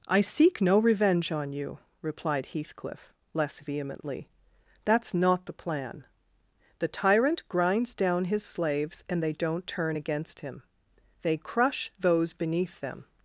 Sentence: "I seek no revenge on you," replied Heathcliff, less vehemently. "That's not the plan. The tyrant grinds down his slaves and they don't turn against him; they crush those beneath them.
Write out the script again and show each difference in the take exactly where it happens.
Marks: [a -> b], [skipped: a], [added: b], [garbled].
"I seek no revenge on you," replied Heathcliff, less vehemently. "That's not the plan. The tyrant grinds down his slaves and they don't turn against him; they crush those beneath them.